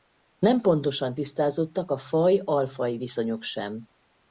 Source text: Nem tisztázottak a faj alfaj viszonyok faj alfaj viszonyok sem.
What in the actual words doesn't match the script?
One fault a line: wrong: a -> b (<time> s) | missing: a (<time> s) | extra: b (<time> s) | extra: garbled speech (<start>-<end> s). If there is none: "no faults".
extra: pontosan (0.6 s)
missing: faj alfaj viszonyok (3.4 s)